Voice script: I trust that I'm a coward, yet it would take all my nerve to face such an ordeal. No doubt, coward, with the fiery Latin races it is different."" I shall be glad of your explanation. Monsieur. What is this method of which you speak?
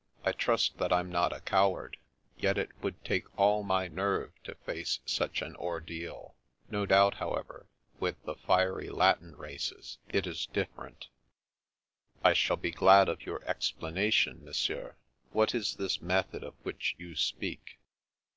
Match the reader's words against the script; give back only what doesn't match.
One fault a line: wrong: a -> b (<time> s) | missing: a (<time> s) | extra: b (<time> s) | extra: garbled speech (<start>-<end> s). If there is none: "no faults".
extra: not (1.1 s)
wrong: coward -> however (7.1 s)